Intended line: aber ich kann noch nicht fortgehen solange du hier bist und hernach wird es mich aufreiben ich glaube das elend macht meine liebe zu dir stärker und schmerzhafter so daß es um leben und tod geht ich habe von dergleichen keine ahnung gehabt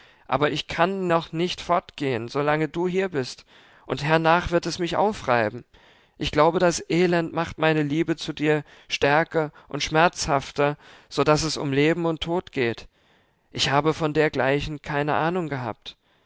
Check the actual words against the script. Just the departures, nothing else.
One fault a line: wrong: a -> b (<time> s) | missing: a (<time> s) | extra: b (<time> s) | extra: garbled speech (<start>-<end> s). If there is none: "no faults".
no faults